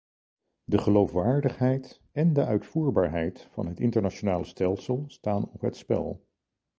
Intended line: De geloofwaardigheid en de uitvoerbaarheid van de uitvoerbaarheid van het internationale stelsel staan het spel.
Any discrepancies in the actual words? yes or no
yes